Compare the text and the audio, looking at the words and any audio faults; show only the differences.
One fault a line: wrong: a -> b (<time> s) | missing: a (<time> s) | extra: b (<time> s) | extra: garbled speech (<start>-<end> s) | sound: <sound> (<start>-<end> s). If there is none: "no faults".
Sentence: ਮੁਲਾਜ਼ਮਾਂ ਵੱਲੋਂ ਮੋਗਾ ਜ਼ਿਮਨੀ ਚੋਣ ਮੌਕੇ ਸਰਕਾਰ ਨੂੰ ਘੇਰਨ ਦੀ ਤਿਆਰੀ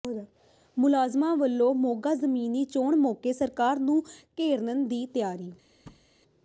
sound: thud (5.9-6.1 s)